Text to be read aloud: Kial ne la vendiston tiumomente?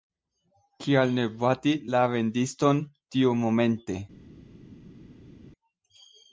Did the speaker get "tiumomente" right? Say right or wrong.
right